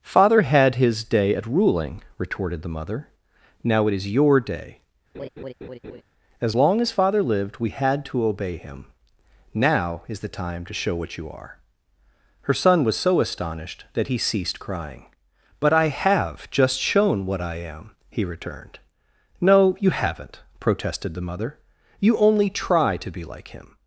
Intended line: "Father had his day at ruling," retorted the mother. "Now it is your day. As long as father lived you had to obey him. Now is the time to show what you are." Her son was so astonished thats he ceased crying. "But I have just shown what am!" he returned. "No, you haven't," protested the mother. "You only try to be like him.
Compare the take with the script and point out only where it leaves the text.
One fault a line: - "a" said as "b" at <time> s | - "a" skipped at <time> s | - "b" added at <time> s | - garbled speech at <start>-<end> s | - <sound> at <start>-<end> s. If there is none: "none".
- laugh at 5.1-6.0 s
- "you" said as "we" at 7.6 s
- "thats" said as "that" at 13.9 s
- "I" added at 17.4 s